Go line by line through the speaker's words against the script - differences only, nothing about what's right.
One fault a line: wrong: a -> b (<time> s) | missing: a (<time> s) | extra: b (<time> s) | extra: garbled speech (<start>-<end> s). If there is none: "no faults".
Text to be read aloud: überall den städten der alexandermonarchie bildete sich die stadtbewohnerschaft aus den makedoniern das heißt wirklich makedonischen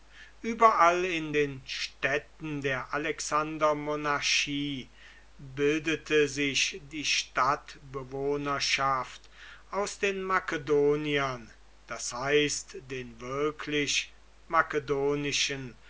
extra: in (1.1 s)
extra: den (12.8 s)